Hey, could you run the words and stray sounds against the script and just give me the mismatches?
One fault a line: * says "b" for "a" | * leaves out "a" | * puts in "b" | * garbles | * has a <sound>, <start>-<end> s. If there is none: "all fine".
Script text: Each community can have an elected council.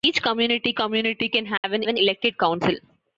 * puts in "community"
* has a dropout, 1.6-1.6 s
* puts in "an"